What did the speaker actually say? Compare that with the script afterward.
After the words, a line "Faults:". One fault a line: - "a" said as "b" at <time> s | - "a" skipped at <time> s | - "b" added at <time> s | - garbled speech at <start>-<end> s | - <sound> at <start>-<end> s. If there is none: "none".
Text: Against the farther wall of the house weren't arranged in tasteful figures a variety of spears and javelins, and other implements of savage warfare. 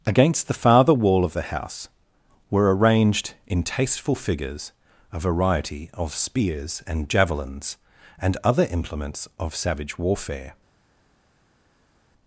Against the farther wall of the house were arranged in tasteful figures a variety of spears and javelins, and other implements of savage warfare.
Faults:
- "weren't" said as "were" at 2.5 s